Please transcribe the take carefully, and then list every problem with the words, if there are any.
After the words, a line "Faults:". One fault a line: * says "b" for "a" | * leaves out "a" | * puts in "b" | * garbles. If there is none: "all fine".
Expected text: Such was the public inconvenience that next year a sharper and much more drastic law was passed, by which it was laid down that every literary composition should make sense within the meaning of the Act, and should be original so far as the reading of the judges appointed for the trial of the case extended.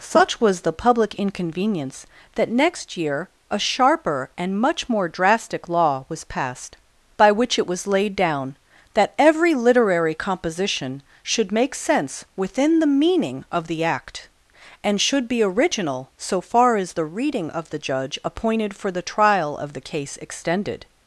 Such was the public inconvenience that next year a sharper and much more drastic law was passed, by which it was laid down that every literary composition should make sense within the meaning of the Act, and should be original so far as the reading of the judge appointed for the trial of the case extended.
Faults:
* says "judge" for "judges"